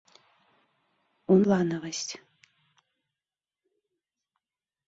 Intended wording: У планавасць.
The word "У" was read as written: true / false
true